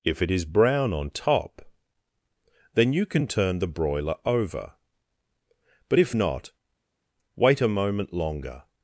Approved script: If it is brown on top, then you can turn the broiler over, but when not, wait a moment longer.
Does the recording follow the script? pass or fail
fail